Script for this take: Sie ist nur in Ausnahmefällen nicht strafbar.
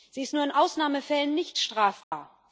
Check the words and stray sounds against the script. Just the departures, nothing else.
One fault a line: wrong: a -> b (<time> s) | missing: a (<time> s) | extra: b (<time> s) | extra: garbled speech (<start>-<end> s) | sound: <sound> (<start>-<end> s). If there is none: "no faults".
sound: dropout (2.0-2.1 s)